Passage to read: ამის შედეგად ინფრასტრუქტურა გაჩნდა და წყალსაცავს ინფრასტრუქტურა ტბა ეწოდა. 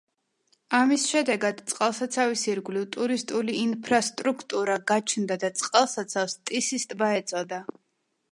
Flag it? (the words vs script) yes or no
yes